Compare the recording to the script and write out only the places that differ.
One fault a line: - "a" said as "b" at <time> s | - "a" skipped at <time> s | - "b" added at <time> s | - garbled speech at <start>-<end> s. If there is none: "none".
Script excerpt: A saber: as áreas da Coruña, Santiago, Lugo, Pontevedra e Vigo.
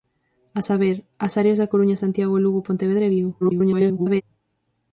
- garbled speech at 3.4-4.2 s